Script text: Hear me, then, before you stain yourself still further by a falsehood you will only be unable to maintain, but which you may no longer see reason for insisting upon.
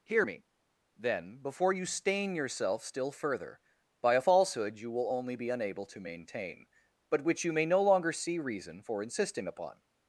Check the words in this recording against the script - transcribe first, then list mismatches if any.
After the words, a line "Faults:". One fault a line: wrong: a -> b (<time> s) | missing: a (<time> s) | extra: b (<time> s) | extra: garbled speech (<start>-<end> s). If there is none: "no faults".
Hear me, then, before you stain yourself still further by a falsehood you will only be unable to maintain, but which you may no longer see reason for insisting upon.
Faults:
no faults